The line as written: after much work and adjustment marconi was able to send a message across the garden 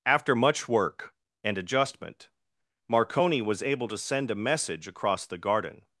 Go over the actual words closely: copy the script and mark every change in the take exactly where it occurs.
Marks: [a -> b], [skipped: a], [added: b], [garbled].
after much work and adjustment marconi was able to send a message across the garden